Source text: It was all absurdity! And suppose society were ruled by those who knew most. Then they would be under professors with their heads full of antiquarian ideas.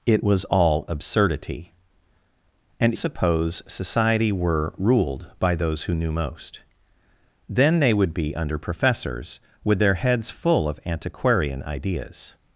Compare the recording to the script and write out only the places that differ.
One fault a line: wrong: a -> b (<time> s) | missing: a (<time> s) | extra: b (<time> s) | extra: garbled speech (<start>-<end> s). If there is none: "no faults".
no faults